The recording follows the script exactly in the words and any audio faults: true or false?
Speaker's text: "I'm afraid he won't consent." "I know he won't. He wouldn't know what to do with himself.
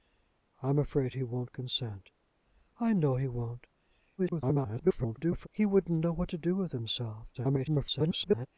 false